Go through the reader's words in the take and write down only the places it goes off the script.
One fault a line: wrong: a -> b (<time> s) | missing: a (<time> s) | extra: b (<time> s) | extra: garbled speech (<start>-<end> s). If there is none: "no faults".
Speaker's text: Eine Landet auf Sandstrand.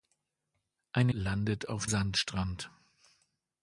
no faults